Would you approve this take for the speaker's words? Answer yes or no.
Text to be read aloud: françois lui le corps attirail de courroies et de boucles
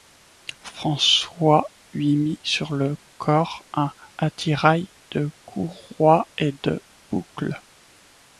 no